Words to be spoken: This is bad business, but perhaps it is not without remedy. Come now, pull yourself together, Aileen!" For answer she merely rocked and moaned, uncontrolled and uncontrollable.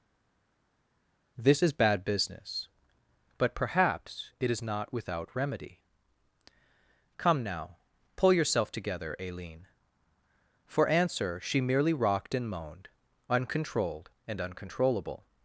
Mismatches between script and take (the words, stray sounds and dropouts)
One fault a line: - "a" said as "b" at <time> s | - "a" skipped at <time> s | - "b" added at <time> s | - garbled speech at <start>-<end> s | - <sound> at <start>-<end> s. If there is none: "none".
none